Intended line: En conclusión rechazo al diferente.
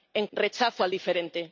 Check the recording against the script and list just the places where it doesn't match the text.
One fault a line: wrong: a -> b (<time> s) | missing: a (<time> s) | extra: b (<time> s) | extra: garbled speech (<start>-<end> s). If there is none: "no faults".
missing: conclusión (0.2 s)